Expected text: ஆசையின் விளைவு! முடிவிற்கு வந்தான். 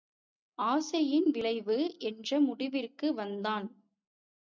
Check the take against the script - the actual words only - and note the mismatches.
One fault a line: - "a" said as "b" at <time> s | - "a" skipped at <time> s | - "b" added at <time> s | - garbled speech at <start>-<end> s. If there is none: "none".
- "என்ற" added at 2.0 s